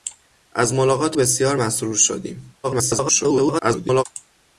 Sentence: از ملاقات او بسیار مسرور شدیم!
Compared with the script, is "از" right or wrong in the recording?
right